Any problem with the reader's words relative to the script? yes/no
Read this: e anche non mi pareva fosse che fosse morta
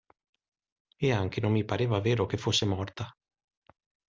yes